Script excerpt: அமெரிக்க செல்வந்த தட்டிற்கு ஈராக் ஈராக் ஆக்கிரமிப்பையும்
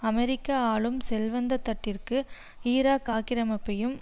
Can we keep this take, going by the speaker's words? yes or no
no